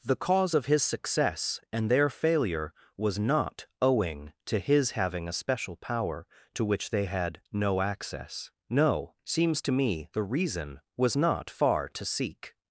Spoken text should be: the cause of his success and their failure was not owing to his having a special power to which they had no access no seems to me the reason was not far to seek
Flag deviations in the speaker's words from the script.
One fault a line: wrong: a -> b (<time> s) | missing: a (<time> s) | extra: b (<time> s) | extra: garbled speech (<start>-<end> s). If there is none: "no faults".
no faults